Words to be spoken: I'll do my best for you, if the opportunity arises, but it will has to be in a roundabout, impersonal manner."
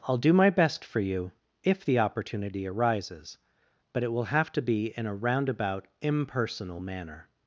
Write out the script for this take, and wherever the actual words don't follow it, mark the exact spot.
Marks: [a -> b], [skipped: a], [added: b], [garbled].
I'll do my best for you, if the opportunity arises, but it will [has -> have] to be in a roundabout, impersonal manner."